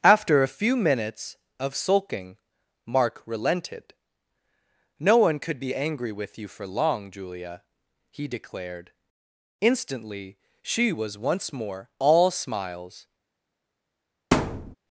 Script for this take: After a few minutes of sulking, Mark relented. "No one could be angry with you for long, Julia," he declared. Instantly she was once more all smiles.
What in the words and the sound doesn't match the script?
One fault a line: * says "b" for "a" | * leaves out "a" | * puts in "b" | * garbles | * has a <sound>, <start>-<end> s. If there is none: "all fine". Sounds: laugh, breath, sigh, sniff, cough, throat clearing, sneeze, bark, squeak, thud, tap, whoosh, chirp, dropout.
* has a thud, 14.3-14.8 s